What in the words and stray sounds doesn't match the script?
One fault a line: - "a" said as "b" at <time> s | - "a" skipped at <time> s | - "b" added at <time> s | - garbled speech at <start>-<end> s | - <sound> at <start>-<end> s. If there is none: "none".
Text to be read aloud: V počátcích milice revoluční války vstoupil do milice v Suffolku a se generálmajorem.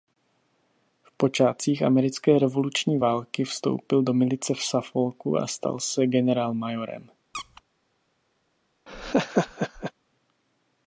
- "milice" said as "americké" at 1.8 s
- "stal" added at 5.5 s
- squeak at 7.3-7.6 s
- laugh at 8.9-9.9 s